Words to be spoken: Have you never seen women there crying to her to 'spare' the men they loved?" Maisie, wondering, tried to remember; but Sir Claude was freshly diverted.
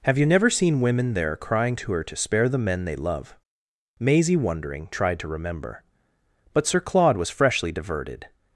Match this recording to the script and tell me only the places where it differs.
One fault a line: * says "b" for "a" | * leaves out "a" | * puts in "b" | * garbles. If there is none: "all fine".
* says "love" for "loved"